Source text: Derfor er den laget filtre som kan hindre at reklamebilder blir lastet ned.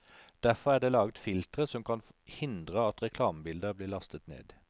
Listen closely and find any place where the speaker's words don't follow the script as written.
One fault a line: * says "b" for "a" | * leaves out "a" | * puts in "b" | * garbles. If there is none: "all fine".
* says "det" for "den"